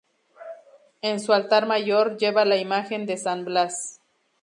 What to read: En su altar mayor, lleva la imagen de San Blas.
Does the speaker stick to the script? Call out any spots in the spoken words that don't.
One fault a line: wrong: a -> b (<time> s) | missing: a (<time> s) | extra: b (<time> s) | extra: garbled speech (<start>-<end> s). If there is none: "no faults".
no faults